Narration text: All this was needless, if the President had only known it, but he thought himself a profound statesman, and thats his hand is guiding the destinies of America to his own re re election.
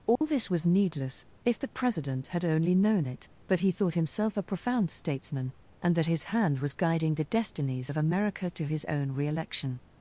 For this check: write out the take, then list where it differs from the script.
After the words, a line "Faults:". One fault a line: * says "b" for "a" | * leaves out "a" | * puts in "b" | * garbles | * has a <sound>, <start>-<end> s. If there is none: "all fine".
All this was needless, if the President had only known it, but he thought himself a profound statesman, and that his hand was guiding the destinies of America to his own re election.
Faults:
* has a dropout, 0.2-0.2 s
* says "that" for "thats"
* says "was" for "is"
* leaves out "re"